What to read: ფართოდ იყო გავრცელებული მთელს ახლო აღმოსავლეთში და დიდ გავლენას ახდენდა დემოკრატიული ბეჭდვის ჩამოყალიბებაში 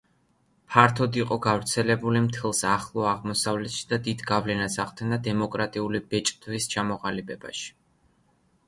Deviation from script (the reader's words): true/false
false